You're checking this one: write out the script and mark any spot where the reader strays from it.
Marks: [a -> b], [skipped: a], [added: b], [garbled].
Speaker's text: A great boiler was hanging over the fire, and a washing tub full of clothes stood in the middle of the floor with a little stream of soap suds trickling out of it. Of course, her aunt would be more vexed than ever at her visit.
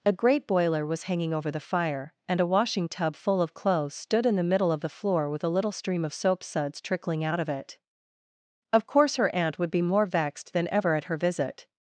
A great boiler was hanging over the fire, and a washing tub full of clothes stood in the middle of the floor with a little stream of soap suds trickling out of it. Of course, her aunt would be more vexed than ever at her visit.